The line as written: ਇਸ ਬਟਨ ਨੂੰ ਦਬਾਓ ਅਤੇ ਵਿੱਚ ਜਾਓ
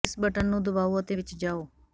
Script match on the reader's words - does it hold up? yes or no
yes